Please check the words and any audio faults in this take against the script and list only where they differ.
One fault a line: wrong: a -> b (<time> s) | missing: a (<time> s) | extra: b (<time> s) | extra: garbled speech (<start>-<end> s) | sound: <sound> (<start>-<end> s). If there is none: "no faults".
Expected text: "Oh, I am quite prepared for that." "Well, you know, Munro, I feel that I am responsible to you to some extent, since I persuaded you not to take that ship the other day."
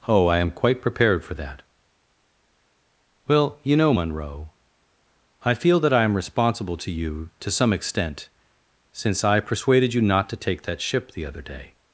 no faults